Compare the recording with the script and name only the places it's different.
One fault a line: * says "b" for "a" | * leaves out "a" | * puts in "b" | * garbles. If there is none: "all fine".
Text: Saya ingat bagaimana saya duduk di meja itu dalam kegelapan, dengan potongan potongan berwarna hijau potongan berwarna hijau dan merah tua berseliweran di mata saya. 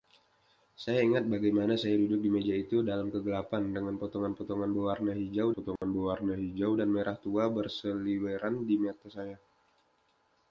all fine